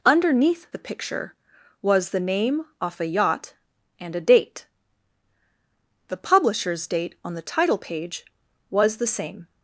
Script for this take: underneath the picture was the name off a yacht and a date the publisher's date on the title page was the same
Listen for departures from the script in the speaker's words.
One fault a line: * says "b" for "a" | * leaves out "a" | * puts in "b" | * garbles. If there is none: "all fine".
all fine